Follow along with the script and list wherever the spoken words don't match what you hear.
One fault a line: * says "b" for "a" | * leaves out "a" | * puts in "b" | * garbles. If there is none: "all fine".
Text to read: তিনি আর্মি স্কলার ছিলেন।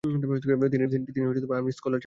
all fine